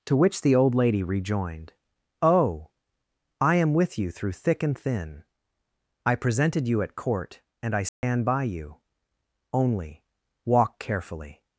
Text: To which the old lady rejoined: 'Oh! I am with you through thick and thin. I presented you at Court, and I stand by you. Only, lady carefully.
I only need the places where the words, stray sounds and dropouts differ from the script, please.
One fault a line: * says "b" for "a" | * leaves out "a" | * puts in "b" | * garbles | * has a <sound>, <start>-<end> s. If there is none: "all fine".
* has a dropout, 7.9-8.0 s
* says "walk" for "lady"